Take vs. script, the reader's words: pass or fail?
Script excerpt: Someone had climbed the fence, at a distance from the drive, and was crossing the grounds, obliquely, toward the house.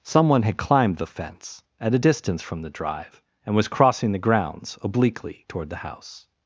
pass